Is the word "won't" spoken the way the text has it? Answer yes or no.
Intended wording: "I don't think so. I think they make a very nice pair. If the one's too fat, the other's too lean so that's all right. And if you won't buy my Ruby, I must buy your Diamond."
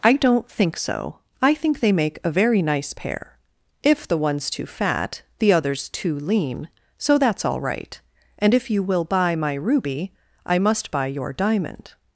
no